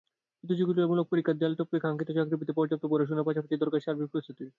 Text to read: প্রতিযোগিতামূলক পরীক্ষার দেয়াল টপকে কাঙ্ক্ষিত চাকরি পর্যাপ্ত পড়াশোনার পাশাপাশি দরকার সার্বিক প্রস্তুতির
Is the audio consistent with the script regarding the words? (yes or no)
no